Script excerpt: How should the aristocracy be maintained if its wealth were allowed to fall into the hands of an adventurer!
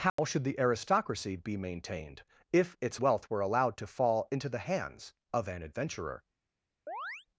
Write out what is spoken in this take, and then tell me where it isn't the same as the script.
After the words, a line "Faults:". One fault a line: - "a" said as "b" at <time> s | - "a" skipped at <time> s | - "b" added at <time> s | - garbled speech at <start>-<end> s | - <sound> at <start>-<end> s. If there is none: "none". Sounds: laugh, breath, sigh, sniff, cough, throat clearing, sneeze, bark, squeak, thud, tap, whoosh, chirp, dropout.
How should the aristocracy be maintained if its wealth were allowed to fall into the hands of an adventurer!
Faults:
- dropout at 0.1-0.2 s
- chirp at 6.9-7.3 s